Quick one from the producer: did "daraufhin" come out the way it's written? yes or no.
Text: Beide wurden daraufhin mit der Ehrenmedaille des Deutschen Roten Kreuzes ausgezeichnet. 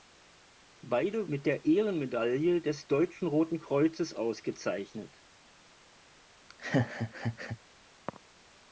no